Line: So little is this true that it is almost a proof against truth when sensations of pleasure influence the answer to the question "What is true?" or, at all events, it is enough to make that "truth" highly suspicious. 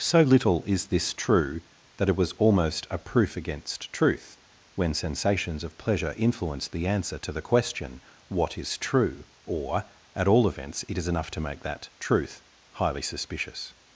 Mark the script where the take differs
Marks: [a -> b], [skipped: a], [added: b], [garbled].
So little is this true that it [is -> was] almost a proof against truth when sensations of pleasure influence the answer to the question "What is true?" or, at all events, it is enough to make that "truth" highly suspicious.